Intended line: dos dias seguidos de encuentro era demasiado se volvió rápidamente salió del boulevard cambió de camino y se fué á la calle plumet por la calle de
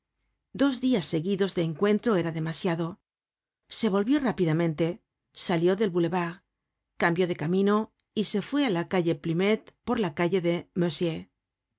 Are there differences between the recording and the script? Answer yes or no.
no